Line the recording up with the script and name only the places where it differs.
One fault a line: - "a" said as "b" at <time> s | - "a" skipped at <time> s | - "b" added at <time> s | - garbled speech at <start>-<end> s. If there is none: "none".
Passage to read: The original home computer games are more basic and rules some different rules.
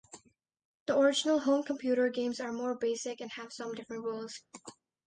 - "rules" said as "have" at 3.3 s